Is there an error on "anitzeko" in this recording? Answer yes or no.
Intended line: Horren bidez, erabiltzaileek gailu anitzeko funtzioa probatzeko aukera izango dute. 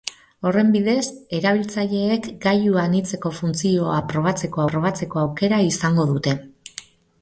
no